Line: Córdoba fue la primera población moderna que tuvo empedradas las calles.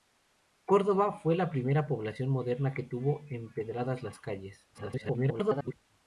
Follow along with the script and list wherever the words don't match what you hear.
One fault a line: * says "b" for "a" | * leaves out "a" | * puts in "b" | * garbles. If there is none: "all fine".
* garbles